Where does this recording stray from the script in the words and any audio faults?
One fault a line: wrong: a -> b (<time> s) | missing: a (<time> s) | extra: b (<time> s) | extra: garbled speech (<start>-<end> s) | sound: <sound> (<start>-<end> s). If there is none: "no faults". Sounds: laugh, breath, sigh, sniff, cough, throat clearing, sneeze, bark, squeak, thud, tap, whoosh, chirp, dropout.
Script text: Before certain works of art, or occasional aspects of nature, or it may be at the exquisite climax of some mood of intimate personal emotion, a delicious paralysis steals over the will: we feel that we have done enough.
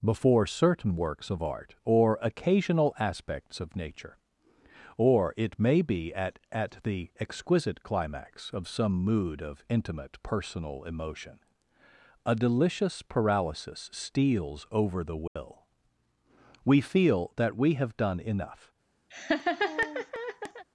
extra: at (6.5 s)
sound: dropout (15.3-15.4 s)
sound: laugh (19.1-20.7 s)